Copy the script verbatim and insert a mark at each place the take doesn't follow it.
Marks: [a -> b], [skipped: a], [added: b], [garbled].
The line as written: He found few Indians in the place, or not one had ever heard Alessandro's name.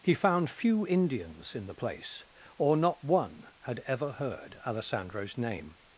He found few Indians in the place, or not one had ever heard Alessandro's name.